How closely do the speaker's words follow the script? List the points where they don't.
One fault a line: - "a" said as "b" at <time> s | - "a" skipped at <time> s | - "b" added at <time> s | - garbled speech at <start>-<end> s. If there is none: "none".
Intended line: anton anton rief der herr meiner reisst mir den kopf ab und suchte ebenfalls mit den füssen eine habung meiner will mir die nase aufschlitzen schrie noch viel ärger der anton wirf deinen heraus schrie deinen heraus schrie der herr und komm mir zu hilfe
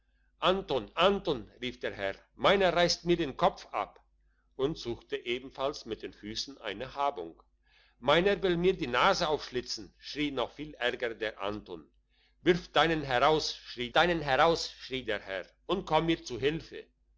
none